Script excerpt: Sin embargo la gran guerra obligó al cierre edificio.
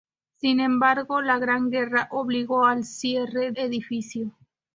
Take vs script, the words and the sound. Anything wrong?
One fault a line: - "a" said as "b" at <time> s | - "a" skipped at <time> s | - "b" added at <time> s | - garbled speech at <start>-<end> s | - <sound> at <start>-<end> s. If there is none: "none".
none